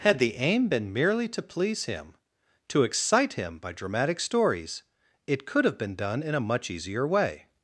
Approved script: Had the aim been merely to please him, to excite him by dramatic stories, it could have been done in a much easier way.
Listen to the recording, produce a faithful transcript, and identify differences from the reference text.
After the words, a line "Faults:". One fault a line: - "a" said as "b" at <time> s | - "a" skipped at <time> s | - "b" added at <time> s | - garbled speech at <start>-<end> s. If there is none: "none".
Had the aim been merely to please him, to excite him by dramatic stories, it could have been done in a much easier way.
Faults:
none